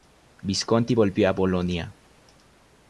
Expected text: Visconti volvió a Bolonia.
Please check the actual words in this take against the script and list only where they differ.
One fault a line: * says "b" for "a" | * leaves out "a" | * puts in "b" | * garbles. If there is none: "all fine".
all fine